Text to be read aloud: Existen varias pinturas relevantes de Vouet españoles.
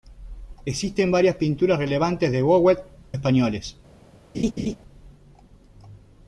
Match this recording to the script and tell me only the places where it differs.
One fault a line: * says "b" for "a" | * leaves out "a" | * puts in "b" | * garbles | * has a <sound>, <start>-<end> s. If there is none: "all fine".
* has a laugh, 4.3-4.8 s